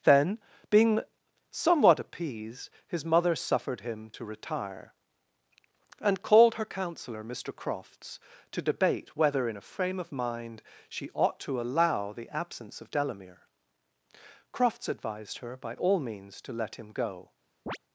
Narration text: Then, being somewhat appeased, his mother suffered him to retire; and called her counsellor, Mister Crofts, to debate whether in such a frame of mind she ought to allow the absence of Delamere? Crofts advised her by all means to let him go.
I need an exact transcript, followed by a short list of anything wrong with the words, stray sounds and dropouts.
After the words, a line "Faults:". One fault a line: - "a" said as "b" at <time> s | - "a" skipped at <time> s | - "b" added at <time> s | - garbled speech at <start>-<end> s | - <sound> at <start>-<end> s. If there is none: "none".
Then, being somewhat appeased, his mother suffered him to retire; and called her counsellor, Mister Crofts, to debate whether in a frame of mind she ought to allow the absence of Delamere? Crofts advised her by all means to let him go.
Faults:
- "such" skipped at 9.6 s
- chirp at 17.7-17.8 s